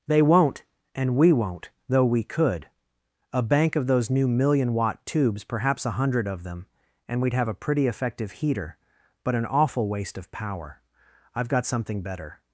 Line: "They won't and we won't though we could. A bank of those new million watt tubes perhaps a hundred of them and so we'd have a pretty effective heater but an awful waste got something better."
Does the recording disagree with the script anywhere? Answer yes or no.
yes